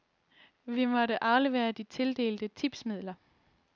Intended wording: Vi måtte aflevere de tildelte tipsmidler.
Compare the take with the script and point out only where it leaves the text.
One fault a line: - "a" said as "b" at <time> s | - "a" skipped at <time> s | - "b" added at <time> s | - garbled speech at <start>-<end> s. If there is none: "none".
none